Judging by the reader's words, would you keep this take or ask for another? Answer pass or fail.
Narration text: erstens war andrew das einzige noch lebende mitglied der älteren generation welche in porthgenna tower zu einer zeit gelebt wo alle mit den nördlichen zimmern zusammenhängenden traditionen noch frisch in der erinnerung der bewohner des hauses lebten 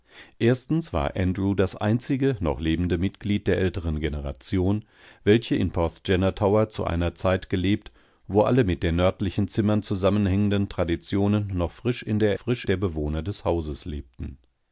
fail